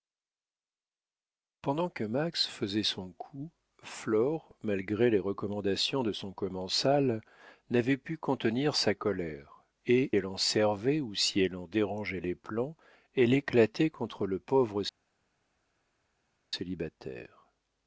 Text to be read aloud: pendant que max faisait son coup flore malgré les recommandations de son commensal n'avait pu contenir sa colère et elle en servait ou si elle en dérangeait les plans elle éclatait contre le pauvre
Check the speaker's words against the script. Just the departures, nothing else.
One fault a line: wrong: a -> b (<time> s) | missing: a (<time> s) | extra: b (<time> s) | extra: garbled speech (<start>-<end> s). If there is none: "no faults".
no faults